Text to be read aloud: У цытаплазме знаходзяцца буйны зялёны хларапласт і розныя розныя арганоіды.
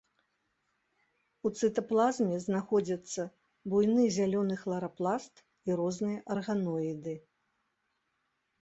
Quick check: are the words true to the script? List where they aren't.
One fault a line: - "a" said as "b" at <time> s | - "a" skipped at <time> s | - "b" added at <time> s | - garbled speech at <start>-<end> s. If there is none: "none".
- "розныя" skipped at 6.2 s